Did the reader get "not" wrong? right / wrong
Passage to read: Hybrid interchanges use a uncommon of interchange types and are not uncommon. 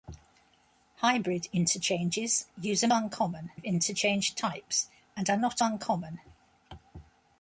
right